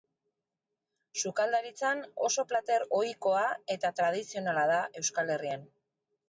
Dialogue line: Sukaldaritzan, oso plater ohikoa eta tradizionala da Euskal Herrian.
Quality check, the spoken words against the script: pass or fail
pass